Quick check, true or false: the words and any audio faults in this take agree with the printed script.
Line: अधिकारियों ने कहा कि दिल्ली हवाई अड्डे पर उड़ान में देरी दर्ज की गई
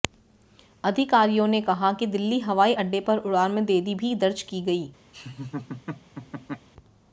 false